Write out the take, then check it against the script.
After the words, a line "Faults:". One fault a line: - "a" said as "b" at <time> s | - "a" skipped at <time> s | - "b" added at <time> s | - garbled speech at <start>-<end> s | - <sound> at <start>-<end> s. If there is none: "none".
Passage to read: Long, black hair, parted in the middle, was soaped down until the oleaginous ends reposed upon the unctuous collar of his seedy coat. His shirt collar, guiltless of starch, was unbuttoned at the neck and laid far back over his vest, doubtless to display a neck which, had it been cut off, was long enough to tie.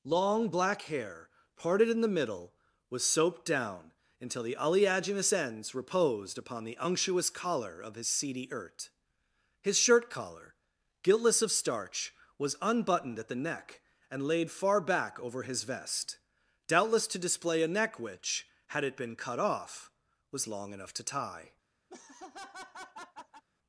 Long, black hair, parted in the middle, was soaped down until the oleaginous ends reposed upon the unctuous collar of his seedy ert. His shirt collar, guiltless of starch, was unbuttoned at the neck and laid far back over his vest, doubtless to display a neck which, had it been cut off, was long enough to tie.
Faults:
- "coat" said as "ert" at 8.5 s
- laugh at 21.9-23.4 s